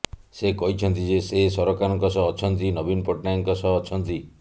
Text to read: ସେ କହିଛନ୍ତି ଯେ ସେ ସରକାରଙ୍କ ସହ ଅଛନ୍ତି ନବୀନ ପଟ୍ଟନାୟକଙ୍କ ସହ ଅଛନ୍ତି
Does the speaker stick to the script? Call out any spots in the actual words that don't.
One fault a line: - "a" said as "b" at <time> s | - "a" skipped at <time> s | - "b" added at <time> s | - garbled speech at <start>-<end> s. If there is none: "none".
none